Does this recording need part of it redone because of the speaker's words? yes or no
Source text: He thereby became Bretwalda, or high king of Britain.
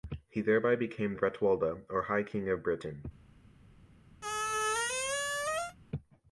no